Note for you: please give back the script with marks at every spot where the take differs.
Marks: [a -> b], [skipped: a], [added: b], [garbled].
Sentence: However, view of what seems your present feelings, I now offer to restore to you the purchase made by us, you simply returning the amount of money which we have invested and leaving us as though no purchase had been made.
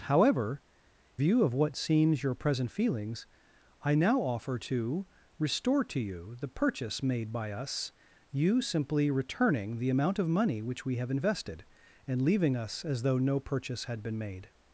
However, view of what seems your present feelings, I now offer to restore to you the purchase made by us, you simply returning the amount of money which we have invested and leaving us as though no purchase had been made.